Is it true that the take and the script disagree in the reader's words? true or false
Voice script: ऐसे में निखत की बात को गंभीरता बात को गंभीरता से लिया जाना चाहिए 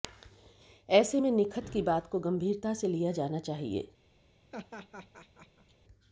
true